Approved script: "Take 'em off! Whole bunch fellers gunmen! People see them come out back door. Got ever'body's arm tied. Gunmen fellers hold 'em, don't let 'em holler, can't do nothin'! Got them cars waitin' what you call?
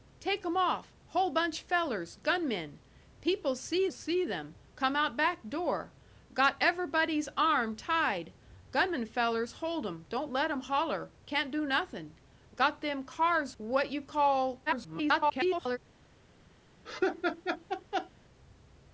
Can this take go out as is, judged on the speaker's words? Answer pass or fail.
fail